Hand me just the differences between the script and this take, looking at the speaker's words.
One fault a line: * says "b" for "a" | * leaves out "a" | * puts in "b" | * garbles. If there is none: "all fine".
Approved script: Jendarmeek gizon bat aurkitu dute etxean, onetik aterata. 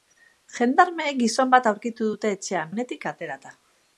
all fine